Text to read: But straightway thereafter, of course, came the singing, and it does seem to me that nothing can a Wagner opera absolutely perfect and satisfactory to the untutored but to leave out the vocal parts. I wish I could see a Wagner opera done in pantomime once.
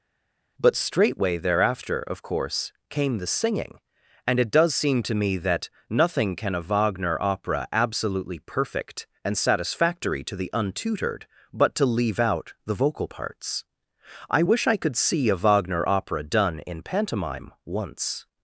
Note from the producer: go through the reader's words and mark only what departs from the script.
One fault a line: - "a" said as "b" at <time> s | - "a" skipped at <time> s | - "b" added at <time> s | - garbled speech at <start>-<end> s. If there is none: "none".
none